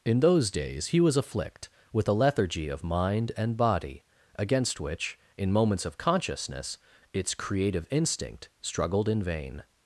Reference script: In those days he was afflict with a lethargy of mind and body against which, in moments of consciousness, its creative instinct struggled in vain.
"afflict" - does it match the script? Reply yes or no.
yes